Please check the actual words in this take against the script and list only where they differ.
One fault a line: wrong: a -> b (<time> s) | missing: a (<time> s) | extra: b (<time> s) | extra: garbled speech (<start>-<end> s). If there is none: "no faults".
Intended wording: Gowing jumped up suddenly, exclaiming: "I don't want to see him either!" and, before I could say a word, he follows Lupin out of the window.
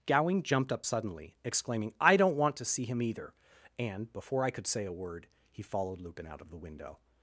wrong: follows -> followed (5.6 s)